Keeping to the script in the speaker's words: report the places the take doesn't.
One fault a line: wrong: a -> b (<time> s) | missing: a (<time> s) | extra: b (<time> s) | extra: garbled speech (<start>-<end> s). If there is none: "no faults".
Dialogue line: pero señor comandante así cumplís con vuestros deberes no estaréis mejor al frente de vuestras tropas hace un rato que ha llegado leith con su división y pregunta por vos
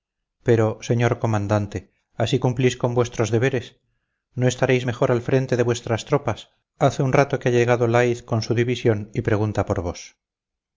no faults